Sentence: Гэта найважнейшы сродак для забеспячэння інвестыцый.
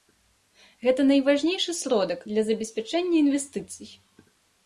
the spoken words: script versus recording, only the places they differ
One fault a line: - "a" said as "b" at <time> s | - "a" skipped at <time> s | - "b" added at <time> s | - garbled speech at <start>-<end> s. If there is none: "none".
none